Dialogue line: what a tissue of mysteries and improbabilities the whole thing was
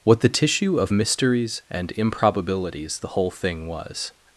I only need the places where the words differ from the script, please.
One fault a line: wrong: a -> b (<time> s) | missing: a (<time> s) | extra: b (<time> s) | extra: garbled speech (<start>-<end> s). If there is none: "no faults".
wrong: a -> the (0.2 s)